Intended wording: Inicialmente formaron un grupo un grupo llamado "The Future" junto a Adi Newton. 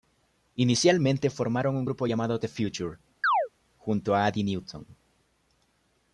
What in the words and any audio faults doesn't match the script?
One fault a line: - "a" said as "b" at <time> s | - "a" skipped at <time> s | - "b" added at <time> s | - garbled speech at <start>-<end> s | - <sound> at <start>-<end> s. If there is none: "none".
- "un grupo" skipped at 2.1 s
- chirp at 3.2-3.5 s